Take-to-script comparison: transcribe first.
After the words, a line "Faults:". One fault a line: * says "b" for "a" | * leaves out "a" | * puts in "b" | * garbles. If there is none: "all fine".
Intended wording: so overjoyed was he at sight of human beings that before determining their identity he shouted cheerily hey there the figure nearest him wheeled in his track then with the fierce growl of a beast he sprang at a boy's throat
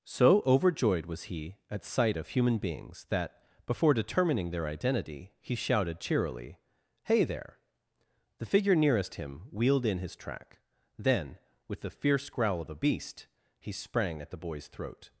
so overjoyed was he at sight of human beings that before determining their identity he shouted cheerily hey there the figure nearest him wheeled in his track then with the fierce growl of a beast he sprang at the boy's throat
Faults:
* says "the" for "a"